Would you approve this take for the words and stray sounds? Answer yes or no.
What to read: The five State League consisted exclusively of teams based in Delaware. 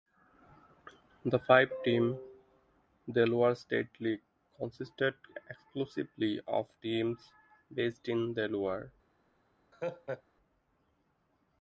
no